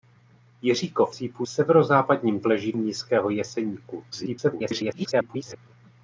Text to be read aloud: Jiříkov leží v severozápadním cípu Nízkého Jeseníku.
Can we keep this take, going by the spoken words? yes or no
no